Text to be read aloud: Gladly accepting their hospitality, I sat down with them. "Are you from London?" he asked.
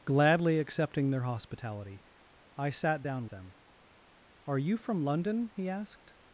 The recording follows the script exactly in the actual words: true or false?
false